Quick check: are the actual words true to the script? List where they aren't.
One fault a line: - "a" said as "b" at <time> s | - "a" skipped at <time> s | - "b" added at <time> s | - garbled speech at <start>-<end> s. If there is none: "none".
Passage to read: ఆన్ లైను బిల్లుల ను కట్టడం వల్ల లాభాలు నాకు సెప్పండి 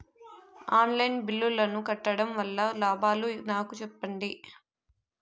none